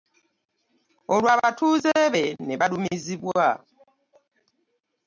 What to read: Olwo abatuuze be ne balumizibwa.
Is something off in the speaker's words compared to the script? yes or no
no